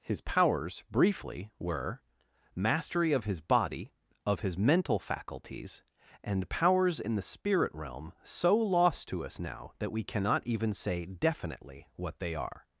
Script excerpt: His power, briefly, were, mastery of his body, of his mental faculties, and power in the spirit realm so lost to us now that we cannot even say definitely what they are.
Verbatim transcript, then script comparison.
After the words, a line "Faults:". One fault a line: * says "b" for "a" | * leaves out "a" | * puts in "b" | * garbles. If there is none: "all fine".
His powers, briefly, were, mastery of his body, of his mental faculties, and powers in the spirit realm so lost to us now that we cannot even say definitely what they are.
Faults:
* says "powers" for "power"
* says "powers" for "power"